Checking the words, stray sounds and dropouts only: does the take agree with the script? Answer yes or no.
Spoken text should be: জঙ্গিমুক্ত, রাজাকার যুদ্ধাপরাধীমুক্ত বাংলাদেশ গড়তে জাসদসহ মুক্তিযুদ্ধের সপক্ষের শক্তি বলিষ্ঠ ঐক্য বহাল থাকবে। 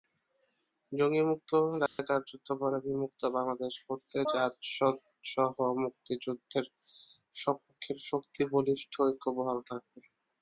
no